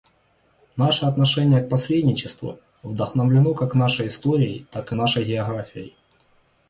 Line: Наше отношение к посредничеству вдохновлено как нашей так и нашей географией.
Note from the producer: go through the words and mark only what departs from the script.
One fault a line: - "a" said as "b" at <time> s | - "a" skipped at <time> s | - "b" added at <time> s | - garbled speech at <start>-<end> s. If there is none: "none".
- "историей" added at 4.1 s